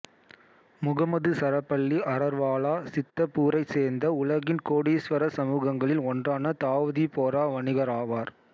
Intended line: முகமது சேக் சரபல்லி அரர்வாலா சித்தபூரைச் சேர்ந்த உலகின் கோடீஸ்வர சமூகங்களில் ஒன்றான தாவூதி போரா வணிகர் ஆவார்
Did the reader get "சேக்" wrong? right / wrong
wrong